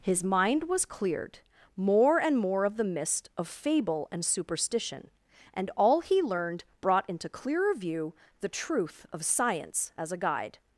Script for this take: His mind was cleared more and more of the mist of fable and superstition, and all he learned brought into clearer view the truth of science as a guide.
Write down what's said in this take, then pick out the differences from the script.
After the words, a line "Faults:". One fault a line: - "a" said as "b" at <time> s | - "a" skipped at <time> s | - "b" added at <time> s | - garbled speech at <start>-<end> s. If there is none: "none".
His mind was cleared more and more of the mist of fable and superstition, and all he learned brought into clearer view the truth of science as a guide.
Faults:
none